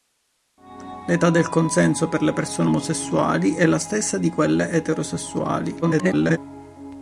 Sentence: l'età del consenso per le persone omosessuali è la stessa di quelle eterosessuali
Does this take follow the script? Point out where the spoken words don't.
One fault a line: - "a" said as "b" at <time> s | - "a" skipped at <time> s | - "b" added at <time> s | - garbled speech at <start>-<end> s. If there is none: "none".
- garbled speech at 5.8-6.4 s